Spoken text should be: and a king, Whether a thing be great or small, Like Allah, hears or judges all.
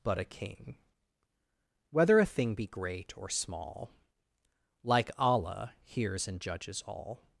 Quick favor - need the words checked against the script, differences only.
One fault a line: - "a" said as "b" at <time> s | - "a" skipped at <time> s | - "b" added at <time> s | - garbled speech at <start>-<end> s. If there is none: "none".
- "and" said as "but" at 0.0 s
- "or" said as "and" at 6.3 s